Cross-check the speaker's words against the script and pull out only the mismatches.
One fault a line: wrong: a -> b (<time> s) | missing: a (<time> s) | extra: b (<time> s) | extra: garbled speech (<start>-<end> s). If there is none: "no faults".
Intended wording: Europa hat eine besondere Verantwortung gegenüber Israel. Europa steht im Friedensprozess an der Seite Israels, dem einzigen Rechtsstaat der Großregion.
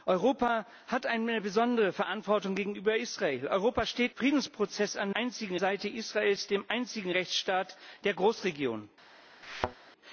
missing: im (4.2 s)
wrong: der -> einzigen (5.1 s)